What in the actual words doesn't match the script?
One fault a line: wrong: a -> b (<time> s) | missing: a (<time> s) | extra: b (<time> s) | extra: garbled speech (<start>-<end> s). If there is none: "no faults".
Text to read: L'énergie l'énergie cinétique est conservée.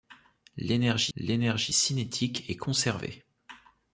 no faults